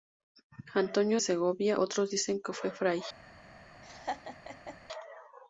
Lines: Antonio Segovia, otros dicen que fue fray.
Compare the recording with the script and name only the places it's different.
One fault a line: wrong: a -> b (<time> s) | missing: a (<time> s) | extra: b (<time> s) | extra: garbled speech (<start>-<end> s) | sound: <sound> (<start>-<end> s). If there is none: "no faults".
sound: laugh (3.8-4.8 s)